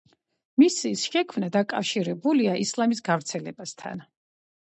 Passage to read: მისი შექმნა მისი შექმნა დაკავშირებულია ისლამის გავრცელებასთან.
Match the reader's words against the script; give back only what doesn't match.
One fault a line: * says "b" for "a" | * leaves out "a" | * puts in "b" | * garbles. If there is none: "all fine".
* leaves out "მისი შექმნა"